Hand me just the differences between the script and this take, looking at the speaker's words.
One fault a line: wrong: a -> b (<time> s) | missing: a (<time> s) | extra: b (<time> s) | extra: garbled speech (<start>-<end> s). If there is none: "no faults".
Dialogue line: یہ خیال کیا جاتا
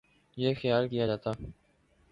no faults